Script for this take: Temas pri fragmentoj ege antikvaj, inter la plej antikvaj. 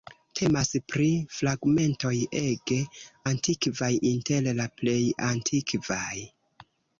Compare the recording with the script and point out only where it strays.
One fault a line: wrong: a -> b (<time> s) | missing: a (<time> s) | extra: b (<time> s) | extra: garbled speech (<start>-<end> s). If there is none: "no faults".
no faults